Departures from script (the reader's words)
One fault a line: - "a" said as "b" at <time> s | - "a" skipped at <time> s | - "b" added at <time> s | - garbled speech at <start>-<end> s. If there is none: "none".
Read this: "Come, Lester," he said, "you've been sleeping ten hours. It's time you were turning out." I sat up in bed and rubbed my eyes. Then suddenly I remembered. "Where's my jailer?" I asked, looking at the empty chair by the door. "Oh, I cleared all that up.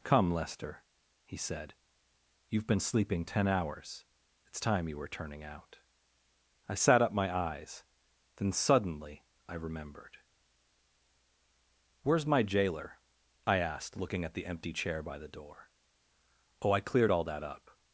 - "in bed and rubbed" skipped at 7.1 s